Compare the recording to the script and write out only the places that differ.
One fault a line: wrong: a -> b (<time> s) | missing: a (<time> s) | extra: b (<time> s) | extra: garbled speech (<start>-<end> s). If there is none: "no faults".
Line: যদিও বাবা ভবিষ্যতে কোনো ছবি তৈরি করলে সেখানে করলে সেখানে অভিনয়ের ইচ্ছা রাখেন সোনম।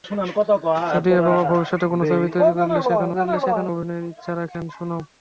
no faults